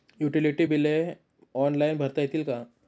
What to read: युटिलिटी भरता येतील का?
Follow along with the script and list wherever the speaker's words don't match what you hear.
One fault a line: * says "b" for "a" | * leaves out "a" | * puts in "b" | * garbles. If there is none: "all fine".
* puts in "बिले ऑनलाईन"